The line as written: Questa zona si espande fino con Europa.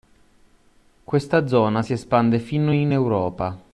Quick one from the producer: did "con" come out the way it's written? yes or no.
no